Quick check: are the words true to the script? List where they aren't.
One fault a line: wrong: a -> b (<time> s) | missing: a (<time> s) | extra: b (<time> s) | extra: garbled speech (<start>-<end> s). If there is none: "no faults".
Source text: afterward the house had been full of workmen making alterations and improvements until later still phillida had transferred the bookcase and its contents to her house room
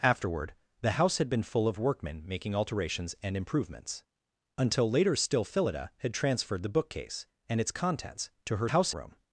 no faults